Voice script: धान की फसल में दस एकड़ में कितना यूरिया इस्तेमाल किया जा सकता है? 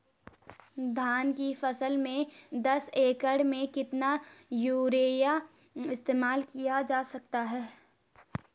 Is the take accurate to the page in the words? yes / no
yes